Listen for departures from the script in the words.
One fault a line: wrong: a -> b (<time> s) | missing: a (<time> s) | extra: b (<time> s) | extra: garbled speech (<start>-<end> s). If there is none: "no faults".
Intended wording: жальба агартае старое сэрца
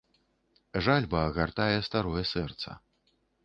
no faults